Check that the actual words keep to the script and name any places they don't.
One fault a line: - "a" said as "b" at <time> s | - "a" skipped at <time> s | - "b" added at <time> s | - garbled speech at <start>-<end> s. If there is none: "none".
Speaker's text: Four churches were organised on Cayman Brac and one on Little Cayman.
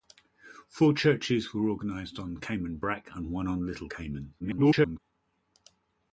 - garbled speech at 4.4-5.0 s